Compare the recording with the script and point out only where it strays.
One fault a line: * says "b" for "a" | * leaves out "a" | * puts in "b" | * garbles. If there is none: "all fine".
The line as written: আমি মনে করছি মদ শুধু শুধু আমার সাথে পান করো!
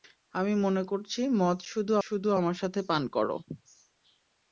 all fine